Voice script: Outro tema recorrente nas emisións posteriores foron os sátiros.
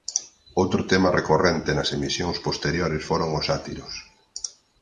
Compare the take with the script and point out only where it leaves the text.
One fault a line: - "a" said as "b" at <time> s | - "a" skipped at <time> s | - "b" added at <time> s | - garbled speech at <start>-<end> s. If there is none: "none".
none